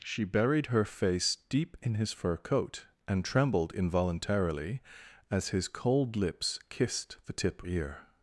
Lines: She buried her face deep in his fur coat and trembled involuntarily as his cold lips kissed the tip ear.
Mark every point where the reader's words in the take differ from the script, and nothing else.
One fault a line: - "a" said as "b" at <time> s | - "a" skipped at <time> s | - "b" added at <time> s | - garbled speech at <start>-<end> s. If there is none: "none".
none